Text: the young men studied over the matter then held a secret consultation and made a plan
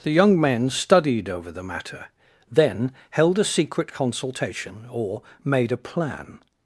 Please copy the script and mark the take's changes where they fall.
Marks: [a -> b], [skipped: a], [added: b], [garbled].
the young men studied over the matter then held a secret consultation [and -> or] made a plan